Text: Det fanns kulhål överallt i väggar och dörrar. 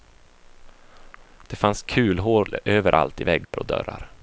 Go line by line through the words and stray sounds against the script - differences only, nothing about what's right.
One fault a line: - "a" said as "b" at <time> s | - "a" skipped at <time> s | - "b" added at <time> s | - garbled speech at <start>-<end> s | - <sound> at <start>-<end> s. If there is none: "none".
- dropout at 3.4-3.5 s